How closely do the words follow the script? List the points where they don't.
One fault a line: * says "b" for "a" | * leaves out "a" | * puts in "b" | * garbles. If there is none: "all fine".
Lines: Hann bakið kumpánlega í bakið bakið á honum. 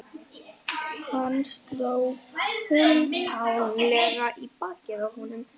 * says "sló" for "bakið"
* leaves out "bakið"